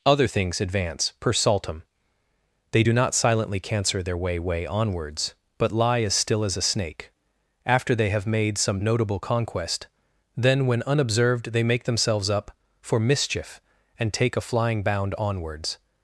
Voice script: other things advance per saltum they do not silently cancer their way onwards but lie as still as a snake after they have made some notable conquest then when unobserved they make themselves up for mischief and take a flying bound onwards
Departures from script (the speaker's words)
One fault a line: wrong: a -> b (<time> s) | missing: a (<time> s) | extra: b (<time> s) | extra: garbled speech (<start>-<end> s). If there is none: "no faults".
extra: way (4.4 s)